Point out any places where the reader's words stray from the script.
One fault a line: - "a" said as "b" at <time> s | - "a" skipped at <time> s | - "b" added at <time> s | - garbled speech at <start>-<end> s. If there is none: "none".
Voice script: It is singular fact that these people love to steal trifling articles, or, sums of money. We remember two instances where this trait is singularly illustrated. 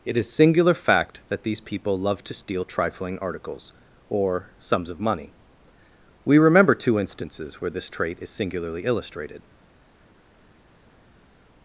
none